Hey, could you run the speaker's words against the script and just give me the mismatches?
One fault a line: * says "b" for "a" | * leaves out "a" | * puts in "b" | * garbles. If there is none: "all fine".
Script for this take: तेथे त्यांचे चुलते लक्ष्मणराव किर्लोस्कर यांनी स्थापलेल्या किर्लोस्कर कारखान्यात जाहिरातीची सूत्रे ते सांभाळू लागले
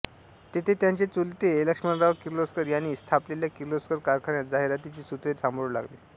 * leaves out "ते"